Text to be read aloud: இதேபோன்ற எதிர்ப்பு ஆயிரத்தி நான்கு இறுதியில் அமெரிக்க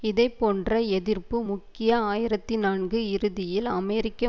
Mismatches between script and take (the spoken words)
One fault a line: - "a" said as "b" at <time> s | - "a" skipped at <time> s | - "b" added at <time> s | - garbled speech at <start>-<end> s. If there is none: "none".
- "முக்கிய" added at 1.4 s